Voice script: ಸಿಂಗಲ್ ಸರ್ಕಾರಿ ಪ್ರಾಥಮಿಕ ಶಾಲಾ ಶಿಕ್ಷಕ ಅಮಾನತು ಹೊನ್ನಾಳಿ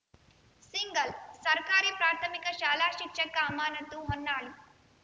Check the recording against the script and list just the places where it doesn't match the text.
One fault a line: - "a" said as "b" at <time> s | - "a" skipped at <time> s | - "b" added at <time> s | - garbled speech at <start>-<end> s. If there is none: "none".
none